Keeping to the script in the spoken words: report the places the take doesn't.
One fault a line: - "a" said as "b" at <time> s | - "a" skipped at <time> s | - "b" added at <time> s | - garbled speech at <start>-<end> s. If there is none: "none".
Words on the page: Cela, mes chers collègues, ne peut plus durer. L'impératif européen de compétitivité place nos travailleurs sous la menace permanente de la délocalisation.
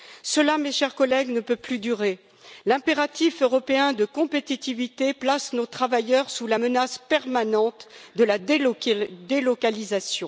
none